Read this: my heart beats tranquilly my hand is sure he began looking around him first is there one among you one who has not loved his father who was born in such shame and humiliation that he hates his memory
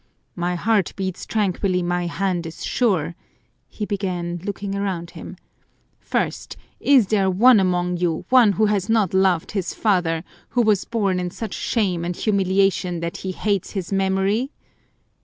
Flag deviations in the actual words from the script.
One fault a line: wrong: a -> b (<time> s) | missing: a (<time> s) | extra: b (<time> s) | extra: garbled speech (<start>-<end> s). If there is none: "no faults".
no faults